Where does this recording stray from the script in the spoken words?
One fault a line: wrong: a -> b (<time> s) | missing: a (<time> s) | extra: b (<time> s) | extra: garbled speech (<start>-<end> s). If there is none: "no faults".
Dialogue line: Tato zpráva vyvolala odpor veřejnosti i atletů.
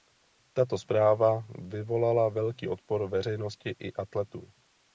extra: velký (2.3 s)